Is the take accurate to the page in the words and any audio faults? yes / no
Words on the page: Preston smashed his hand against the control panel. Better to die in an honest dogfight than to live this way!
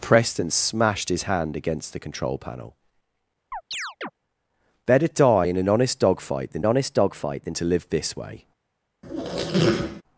no